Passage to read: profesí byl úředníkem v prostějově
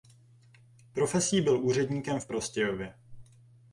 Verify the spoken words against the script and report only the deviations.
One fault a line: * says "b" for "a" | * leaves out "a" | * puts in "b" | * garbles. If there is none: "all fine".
all fine